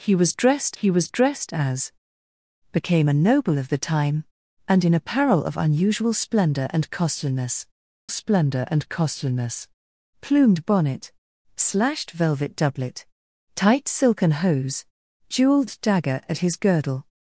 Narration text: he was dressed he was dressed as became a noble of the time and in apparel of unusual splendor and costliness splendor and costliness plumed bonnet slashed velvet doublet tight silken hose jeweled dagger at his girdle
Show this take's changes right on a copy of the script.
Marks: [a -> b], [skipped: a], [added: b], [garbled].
he was dressed he was dressed as became a noble of the time and in apparel of unusual splendor and costliness splendor and costliness plumed bonnet slashed velvet doublet tight silken hose jeweled dagger at his girdle